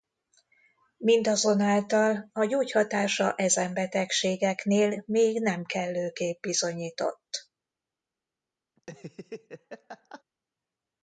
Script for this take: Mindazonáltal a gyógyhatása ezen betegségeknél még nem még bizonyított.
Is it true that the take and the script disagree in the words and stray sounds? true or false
true